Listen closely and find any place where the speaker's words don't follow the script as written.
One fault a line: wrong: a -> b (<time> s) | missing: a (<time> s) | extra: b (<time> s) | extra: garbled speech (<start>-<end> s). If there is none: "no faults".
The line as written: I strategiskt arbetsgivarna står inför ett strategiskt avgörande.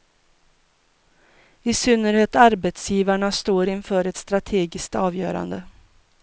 wrong: strategiskt -> synnerhet (1.7 s)